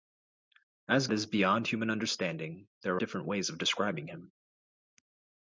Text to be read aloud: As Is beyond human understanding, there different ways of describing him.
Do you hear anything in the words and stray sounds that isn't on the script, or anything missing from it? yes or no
no